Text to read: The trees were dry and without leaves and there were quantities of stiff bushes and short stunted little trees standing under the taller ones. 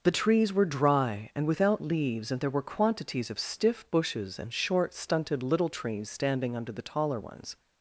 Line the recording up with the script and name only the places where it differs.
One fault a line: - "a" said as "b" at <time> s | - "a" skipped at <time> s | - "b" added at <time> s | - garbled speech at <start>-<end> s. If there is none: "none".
none